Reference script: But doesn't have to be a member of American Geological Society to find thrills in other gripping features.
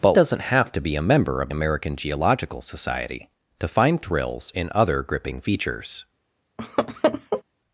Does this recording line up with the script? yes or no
yes